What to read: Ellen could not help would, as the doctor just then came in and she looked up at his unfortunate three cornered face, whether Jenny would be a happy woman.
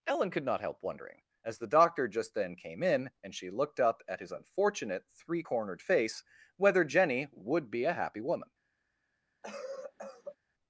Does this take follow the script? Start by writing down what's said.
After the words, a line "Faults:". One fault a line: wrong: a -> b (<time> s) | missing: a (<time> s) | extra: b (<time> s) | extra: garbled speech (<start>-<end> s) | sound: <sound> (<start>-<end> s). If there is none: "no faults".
Ellen could not help wondering, as the doctor just then came in and she looked up at his unfortunate three cornered face, whether Jenny would be a happy woman.
Faults:
wrong: would -> wondering (0.8 s)
sound: cough (9.4-10.4 s)